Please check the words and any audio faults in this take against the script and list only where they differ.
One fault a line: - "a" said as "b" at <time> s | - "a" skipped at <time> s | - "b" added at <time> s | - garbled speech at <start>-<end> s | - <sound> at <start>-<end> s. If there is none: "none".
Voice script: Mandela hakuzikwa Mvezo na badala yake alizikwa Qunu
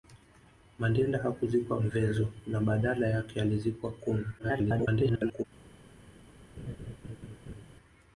- garbled speech at 4.4-5.4 s
- laugh at 6.6-7.7 s